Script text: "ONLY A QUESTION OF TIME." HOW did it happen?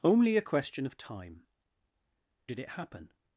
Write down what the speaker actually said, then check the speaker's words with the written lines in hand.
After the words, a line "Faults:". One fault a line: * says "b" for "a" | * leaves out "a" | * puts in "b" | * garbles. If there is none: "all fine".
"ONLY A QUESTION OF TIME." Did it happen?
Faults:
* leaves out "HOW"